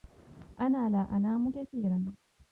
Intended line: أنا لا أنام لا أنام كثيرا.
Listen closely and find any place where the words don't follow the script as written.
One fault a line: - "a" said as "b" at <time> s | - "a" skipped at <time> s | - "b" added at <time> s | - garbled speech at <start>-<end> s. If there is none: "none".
- "لا أنام" skipped at 1.5 s